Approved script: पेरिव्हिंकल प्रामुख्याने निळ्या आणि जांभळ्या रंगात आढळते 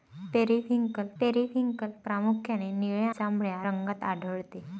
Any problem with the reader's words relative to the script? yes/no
yes